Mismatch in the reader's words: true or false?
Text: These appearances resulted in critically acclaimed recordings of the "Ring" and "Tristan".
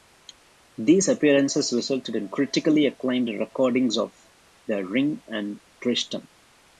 false